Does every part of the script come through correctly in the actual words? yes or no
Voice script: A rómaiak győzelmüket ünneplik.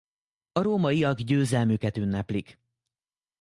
yes